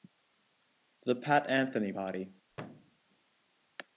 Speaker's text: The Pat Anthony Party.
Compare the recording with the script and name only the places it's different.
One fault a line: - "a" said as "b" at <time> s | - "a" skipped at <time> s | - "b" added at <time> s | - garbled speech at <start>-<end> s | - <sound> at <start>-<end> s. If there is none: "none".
- thud at 2.5-3.0 s